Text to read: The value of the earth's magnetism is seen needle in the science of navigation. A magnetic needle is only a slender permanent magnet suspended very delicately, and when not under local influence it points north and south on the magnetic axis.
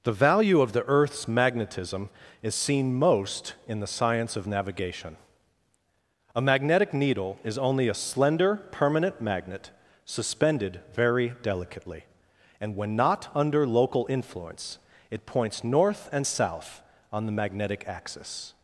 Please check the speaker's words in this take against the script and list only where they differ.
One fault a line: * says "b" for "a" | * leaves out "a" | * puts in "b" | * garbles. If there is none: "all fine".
* says "most" for "needle"